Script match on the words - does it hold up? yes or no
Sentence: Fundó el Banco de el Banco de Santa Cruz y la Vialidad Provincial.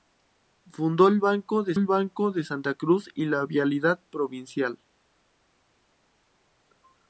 yes